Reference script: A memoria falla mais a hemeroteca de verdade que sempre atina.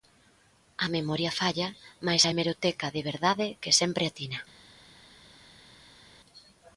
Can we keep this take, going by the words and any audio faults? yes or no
yes